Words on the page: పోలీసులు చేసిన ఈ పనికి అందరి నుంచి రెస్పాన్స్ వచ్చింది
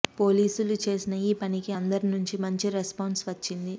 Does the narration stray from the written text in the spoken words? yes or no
yes